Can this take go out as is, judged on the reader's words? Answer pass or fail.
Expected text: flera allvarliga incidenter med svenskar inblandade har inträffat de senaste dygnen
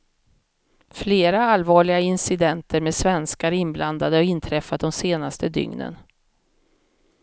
pass